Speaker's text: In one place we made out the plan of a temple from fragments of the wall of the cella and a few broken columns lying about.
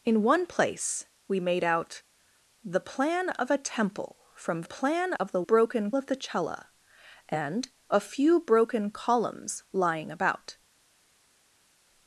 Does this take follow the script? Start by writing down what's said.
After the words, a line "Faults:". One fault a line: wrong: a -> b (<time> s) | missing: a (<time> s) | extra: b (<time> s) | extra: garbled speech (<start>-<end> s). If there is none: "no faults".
In one place we made out the plan of a temple from plan of the broken of the cella and a few broken columns lying about.
Faults:
wrong: fragments -> plan (4.6 s)
wrong: wall -> broken (5.4 s)